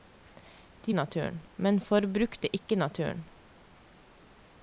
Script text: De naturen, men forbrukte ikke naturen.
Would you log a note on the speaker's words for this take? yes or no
no